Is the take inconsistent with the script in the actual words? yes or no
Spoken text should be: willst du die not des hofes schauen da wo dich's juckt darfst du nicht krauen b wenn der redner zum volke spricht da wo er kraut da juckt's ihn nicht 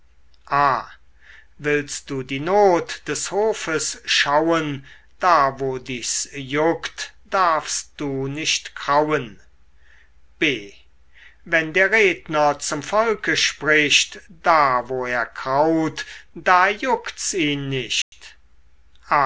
no